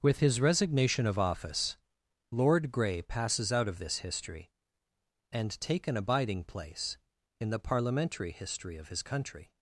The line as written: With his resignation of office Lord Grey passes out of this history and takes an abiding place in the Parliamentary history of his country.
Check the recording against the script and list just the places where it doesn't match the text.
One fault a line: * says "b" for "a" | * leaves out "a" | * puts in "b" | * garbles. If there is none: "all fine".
* says "take" for "takes"